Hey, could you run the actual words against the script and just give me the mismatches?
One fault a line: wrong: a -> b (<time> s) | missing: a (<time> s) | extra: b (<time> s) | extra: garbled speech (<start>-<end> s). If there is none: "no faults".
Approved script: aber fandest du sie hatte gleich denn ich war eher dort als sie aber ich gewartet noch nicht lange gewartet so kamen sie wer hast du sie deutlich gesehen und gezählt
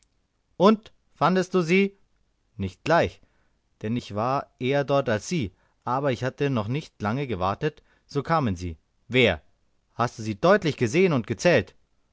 wrong: aber -> und (0.6 s)
wrong: hatte -> nicht (2.6 s)
wrong: gewartet -> hatte (6.2 s)